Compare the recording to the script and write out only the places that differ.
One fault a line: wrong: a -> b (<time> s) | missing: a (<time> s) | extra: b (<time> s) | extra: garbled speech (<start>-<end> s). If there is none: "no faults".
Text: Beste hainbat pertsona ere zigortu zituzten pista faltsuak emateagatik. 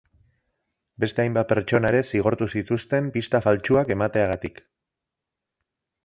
no faults